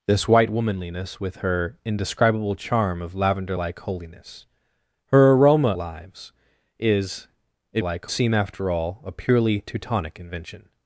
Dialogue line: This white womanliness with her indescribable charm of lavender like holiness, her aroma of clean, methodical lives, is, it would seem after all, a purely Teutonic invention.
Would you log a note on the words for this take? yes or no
yes